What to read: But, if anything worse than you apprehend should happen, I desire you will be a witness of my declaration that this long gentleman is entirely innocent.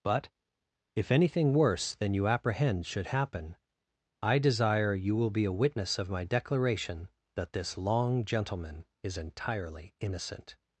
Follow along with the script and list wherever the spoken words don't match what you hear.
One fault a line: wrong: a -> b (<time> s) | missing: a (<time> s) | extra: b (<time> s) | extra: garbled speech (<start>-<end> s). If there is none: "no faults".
no faults